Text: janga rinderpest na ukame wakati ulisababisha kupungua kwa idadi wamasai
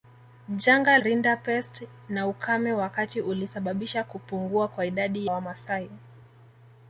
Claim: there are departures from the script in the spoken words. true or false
false